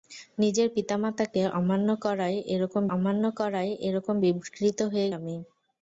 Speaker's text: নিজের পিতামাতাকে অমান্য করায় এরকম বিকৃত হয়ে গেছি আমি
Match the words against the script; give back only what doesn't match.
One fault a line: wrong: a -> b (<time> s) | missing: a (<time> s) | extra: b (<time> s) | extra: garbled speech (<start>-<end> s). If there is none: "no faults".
extra: অমান্য করায় এরকম (3.0 s)
missing: গেছি (5.1 s)